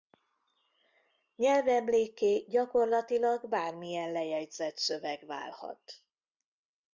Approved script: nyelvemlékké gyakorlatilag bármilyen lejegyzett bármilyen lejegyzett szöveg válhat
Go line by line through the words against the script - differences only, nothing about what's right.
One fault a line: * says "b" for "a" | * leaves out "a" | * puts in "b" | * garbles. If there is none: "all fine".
* leaves out "bármilyen lejegyzett"